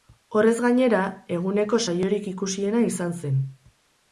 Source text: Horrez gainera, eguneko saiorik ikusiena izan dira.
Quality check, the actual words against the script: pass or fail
fail